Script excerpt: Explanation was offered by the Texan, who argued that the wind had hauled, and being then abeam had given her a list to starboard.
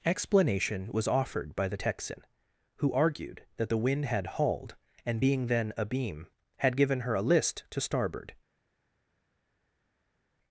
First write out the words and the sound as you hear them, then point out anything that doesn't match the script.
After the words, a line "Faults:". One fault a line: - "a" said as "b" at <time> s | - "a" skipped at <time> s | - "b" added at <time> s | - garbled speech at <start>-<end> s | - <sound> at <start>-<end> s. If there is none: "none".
Explanation was offered by the Texan, who argued that the wind had hauled, and being then abeam had given her a list to starboard.
Faults:
none